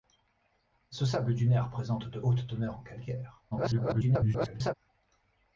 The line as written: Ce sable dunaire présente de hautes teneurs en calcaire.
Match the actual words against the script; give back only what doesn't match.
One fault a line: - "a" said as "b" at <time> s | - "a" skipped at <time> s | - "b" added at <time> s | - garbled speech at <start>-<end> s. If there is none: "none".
- garbled speech at 3.5-4.7 s